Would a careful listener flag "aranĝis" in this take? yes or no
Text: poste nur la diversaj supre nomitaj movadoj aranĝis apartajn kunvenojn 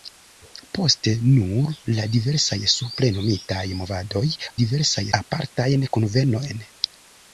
yes